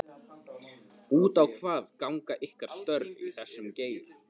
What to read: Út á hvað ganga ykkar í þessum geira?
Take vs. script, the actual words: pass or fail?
fail